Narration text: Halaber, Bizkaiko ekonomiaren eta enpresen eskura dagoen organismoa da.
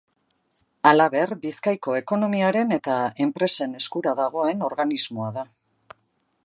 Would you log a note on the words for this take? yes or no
no